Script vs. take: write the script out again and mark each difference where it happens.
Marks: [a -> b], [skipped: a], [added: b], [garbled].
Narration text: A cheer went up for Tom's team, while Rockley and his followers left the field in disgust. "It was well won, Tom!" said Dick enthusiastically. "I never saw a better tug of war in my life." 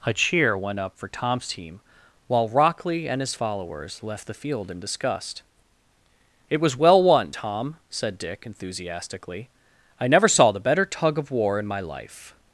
A cheer went up for Tom's team, while Rockley and his followers left the field in disgust. "It was well won, Tom!" said Dick enthusiastically. "I never saw [a -> the] better tug of war in my life."